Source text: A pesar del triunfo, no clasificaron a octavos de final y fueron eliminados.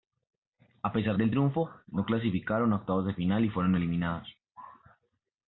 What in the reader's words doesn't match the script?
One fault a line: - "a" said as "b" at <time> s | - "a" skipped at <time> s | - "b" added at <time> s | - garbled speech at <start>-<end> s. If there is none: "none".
none